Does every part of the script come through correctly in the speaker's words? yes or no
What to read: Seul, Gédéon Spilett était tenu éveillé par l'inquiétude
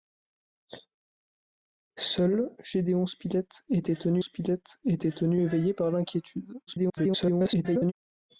no